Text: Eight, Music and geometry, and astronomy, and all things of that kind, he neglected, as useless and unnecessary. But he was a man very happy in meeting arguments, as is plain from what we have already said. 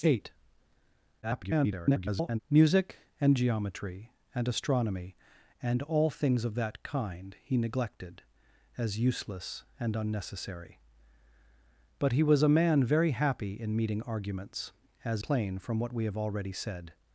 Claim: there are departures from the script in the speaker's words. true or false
true